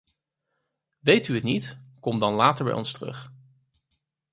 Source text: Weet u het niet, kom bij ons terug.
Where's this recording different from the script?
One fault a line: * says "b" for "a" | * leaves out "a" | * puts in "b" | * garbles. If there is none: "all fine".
* puts in "dan later"